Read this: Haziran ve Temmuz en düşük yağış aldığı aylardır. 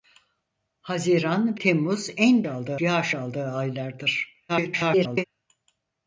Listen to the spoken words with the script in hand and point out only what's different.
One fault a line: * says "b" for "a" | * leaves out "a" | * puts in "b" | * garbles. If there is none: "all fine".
* leaves out "ve"
* says "aldığı" for "düşük"
* garbles